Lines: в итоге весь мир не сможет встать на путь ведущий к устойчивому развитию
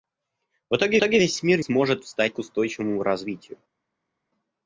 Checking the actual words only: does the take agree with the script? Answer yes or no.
no